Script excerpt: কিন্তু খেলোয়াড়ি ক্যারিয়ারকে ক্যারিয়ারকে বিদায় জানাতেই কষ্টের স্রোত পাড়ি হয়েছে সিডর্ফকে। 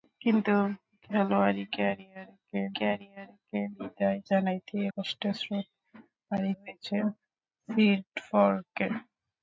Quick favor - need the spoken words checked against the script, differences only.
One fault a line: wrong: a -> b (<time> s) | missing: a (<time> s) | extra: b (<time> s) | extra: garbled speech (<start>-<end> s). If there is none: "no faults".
no faults